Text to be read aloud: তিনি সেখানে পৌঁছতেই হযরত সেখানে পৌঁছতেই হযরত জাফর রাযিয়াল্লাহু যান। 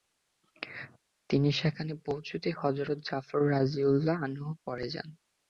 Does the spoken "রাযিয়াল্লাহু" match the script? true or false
false